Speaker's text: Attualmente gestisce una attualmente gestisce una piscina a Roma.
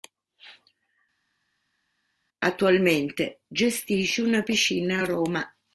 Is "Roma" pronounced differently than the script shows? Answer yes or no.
no